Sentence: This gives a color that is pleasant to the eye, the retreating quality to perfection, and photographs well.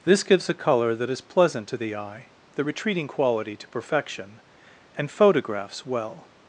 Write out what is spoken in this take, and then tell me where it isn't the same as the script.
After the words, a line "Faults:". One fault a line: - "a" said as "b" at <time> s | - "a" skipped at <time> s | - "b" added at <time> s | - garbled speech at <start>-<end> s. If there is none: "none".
This gives a color that is pleasant to the eye, the retreating quality to perfection, and photographs well.
Faults:
none